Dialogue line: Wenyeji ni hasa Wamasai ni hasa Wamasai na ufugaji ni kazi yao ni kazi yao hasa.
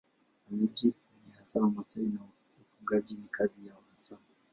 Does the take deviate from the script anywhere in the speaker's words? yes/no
yes